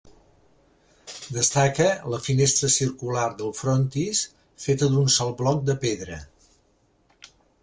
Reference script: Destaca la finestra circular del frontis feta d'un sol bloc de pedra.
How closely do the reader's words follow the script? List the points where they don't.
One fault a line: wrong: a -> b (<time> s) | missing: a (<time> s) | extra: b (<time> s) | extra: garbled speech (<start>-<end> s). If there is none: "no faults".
no faults